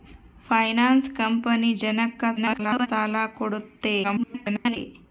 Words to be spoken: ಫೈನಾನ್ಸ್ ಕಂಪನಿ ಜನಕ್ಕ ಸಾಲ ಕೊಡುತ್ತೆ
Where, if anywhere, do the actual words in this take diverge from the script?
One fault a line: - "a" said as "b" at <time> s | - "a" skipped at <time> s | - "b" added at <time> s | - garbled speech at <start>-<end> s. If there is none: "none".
- garbled speech at 2.4-2.9 s
- garbled speech at 4.0-4.8 s